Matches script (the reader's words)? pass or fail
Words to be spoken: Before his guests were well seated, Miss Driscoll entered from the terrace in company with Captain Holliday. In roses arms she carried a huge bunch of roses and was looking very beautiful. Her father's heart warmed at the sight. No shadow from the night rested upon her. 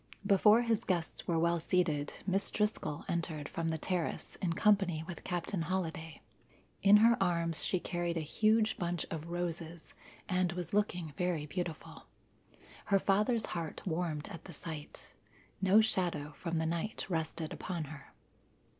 fail